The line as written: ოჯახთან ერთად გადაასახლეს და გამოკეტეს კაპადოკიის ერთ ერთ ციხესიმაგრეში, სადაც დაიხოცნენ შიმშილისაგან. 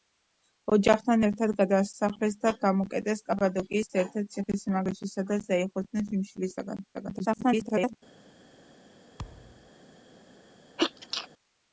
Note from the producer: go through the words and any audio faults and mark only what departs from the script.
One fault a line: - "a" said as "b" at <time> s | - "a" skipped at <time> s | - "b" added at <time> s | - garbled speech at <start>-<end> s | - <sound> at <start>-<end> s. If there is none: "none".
- garbled speech at 6.9-8.0 s
- thud at 9.2-9.7 s
- sneeze at 10.8-11.3 s